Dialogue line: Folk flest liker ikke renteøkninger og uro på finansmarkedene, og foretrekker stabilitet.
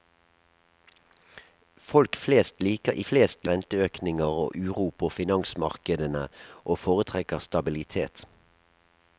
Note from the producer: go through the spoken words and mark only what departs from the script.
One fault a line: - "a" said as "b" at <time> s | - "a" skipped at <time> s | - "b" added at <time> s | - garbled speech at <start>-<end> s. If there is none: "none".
- "ikke" said as "flest" at 3.1 s